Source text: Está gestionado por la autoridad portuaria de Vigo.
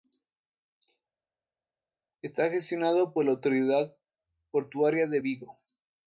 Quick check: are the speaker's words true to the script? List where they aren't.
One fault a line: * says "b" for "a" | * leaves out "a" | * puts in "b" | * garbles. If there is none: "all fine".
all fine